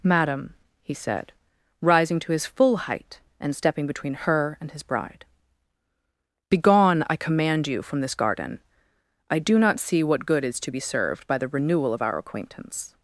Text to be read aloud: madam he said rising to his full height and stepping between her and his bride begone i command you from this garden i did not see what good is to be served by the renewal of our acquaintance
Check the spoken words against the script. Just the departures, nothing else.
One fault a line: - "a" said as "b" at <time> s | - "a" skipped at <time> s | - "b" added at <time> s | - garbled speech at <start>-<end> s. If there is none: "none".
- "did" said as "do" at 9.4 s